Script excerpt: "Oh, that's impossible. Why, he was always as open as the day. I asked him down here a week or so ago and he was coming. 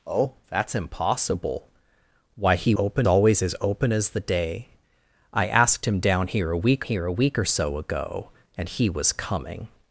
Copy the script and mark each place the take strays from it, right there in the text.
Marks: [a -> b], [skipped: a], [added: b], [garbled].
"Oh, that's impossible. Why, he [was -> open] always as open as the day. I asked him down here a week [added: here a week] or so ago and he was coming.